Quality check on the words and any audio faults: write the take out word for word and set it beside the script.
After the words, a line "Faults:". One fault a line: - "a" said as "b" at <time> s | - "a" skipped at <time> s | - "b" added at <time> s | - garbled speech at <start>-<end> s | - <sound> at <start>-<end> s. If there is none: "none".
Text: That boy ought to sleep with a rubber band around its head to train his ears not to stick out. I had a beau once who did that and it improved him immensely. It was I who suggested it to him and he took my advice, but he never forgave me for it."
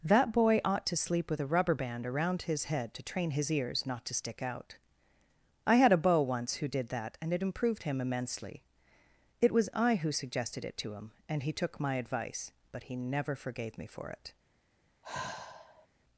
That boy ought to sleep with a rubber band around his head to train his ears not to stick out. I had a beau once who did that and it improved him immensely. It was I who suggested it to him and he took my advice, but he never forgave me for it."
Faults:
- "its" said as "his" at 2.4 s
- sigh at 15.0-15.9 s